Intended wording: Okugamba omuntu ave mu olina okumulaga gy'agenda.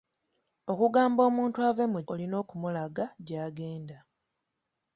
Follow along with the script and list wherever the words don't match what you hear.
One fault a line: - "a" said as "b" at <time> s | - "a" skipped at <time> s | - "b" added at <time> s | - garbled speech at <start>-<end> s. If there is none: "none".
none